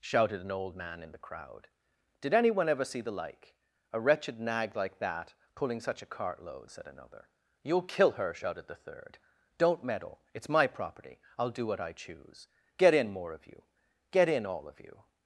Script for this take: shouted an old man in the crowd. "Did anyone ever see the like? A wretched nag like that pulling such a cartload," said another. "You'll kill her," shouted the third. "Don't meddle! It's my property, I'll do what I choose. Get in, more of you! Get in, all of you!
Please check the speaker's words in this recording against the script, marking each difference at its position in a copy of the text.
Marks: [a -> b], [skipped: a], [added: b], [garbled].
shouted an old man in the crowd. "Did anyone ever see the like? A wretched nag like that pulling such a cartload," said another. "You'll kill her," shouted the third. "Don't meddle! It's my property, I'll do what I choose. Get in, more of you! Get in, all of you!